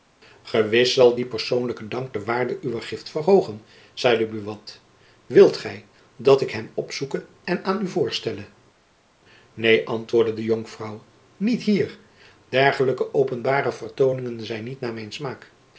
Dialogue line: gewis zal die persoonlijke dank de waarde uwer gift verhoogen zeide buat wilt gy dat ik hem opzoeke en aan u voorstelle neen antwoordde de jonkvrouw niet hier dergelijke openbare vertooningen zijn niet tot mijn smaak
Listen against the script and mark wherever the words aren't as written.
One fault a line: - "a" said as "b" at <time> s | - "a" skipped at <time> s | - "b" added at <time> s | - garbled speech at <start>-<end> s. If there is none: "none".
- "tot" said as "naar" at 14.8 s